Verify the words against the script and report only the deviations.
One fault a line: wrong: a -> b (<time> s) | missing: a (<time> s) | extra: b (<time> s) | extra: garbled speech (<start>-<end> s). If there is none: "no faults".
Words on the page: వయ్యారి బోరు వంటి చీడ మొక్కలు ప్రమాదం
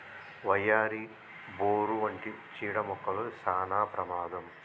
extra: సానా (3.5 s)